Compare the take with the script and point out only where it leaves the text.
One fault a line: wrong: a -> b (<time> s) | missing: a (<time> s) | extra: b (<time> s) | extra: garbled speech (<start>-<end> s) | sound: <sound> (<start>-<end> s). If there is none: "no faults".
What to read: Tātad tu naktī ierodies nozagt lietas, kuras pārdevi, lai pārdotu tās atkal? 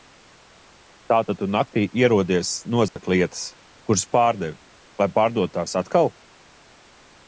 sound: dropout (2.9-3.0 s)